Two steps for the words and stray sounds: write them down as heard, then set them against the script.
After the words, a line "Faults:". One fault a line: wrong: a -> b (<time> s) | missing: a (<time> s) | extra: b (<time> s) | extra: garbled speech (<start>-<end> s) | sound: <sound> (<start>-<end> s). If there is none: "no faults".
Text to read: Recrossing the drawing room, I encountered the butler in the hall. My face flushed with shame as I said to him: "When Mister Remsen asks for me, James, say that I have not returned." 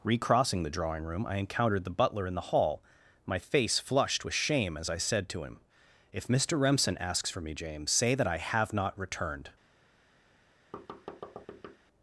Recrossing the drawing room, I encountered the butler in the hall. My face flushed with shame as I said to him: "If Mister Remsen asks for me, James, say that I have not returned."
Faults:
wrong: When -> If (6.1 s)
sound: thud (10.7-11.8 s)